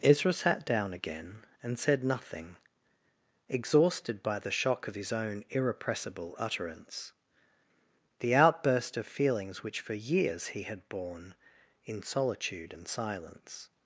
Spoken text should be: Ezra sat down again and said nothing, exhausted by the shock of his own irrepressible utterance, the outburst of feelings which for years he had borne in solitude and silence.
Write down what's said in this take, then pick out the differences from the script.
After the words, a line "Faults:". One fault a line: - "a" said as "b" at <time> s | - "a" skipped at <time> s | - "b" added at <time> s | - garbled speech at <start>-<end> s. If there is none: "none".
Ezra sat down again and said nothing, exhausted by the shock of his own irrepressible utterance, the outburst of feelings which for years he had borne in solitude and silence.
Faults:
none